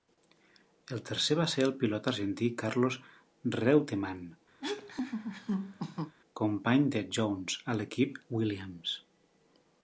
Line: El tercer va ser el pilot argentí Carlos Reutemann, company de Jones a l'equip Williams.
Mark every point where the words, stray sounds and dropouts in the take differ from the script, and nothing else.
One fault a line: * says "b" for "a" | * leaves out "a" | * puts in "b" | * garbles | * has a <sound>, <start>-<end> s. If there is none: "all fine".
* has a laugh, 4.6-6.2 s